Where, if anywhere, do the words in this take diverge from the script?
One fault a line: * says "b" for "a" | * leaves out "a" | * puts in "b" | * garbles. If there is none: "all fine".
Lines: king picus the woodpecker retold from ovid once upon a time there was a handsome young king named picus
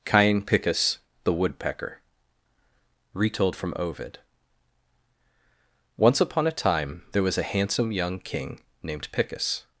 * says "cain" for "king"